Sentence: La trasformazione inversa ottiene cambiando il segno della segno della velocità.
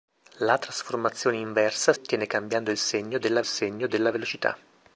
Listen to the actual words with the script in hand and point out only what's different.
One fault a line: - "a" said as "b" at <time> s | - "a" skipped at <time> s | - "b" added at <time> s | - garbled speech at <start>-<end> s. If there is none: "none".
none